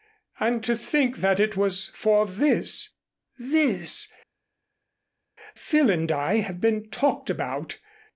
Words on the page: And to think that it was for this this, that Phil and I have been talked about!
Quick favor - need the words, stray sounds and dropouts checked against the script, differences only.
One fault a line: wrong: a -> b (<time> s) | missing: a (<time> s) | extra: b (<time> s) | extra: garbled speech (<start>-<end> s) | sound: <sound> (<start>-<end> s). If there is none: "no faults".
missing: that (4.1 s)